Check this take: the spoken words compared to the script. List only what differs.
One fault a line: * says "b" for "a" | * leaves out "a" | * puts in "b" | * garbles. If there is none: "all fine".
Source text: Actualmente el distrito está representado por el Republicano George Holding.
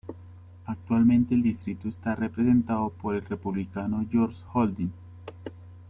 all fine